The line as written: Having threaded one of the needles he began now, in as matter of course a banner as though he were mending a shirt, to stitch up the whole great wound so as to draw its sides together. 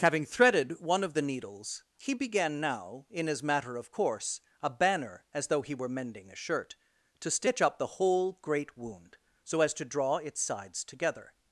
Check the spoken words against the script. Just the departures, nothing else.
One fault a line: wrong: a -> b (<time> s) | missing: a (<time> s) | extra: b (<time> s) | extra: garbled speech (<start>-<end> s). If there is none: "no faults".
no faults